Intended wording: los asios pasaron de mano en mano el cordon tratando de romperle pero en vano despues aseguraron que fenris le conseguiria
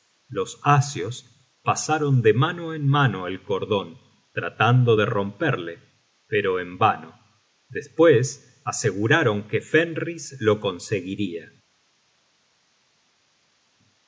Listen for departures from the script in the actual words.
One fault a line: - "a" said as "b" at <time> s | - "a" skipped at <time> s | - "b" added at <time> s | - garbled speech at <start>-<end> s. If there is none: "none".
- "le" said as "lo" at 10.4 s